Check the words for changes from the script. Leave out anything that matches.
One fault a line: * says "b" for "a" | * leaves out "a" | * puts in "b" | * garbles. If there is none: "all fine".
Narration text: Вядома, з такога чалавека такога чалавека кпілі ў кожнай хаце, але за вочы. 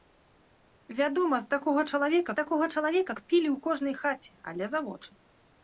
all fine